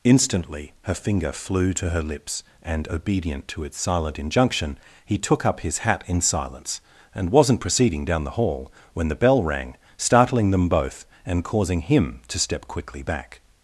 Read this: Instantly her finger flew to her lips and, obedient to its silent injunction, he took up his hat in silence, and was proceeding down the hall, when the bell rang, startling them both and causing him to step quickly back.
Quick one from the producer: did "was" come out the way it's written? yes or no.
no